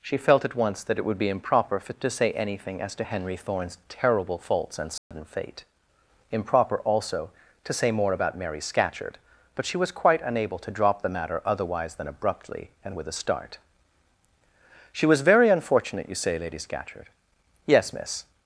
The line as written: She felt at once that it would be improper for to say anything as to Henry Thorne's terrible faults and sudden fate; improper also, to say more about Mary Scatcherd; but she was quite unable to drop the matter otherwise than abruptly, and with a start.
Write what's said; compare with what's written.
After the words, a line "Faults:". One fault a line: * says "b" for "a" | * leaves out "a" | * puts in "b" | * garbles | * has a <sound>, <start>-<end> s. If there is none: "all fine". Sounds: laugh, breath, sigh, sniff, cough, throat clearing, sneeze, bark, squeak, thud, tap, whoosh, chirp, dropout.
She felt at once that it would be improper for to say anything as to Henry Thorne's terrible faults and sudden fate; improper also, to say more about Mary Scatcherd; but she was quite unable to drop the matter otherwise than abruptly, and with a start. "She was very unfortunate, you say, Lady Scatcherd?" "Yes, Miss
Faults:
* has a dropout, 5.0-5.1 s
* puts in "She was very unfortunate you say Lady Scatcherd Yes Miss"